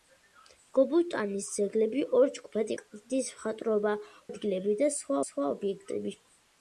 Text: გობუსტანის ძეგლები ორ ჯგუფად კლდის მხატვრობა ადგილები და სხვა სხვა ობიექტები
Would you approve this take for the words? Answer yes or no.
yes